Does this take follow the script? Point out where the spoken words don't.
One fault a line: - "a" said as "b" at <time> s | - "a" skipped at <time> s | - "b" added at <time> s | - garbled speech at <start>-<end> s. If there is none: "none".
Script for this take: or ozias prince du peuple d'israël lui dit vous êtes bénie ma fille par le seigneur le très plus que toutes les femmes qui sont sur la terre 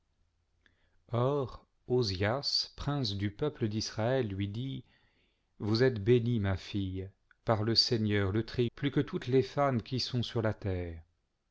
none